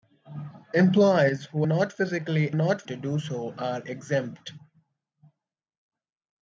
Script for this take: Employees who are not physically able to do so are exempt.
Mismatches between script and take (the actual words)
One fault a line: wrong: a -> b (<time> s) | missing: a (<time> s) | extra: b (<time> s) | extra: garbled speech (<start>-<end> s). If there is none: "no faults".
missing: are (1.6 s)
wrong: able -> not (2.5 s)